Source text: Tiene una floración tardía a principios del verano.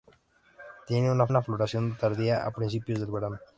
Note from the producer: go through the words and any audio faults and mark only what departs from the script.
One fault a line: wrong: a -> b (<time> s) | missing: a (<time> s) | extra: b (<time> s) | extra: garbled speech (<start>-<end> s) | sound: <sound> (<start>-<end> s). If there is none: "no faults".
extra: una (1.3 s)